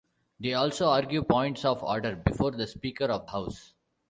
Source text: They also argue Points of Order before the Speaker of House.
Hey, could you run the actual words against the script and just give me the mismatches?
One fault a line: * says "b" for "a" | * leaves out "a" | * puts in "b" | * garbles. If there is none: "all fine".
all fine